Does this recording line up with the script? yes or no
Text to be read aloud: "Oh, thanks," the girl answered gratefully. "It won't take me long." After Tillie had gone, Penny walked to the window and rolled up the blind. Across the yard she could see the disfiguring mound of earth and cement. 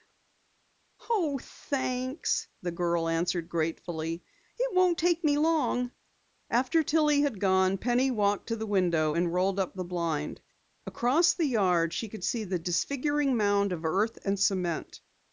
yes